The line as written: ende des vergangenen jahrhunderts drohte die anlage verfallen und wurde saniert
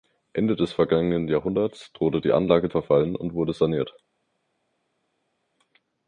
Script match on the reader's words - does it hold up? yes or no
yes